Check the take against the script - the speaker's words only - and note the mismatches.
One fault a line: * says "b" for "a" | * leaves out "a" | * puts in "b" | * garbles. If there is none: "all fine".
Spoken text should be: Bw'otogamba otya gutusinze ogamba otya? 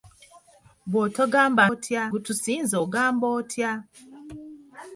all fine